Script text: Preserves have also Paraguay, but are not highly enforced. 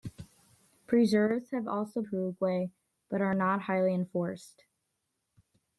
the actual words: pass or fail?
pass